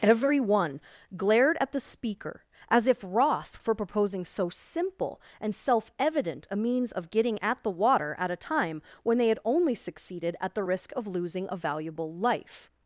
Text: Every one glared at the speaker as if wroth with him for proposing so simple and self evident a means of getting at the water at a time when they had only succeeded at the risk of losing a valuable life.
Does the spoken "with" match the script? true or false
false